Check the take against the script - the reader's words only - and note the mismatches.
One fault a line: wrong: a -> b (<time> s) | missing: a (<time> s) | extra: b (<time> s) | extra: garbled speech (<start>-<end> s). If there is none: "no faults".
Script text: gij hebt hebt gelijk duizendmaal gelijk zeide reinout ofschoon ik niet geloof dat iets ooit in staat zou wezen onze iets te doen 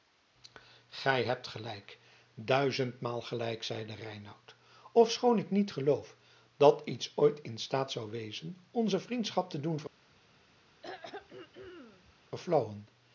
missing: hebt (1.5 s)
wrong: iets -> vriendschap (9.0 s)